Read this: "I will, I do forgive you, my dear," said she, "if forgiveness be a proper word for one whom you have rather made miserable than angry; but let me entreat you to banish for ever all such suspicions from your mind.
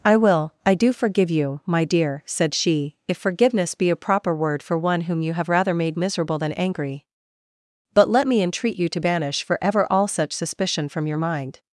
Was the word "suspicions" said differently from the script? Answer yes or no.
yes